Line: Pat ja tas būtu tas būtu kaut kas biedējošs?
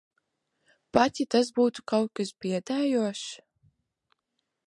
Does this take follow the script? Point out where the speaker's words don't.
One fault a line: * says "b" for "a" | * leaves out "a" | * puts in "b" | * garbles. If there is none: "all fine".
* leaves out "tas būtu"